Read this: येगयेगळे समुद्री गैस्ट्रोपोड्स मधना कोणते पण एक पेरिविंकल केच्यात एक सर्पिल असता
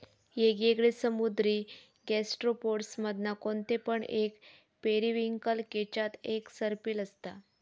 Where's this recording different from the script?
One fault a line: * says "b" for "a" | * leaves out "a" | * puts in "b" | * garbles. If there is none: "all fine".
all fine